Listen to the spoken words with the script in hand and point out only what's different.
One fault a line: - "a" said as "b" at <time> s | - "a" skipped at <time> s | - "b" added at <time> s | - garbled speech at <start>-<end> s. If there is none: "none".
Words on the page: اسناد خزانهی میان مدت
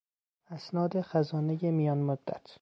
none